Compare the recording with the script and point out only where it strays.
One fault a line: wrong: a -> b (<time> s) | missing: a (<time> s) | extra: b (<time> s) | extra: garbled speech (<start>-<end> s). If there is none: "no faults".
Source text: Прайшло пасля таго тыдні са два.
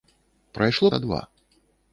missing: пасля таго тыдні (0.9 s)